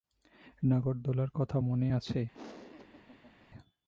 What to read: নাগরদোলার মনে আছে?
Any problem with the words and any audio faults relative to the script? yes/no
yes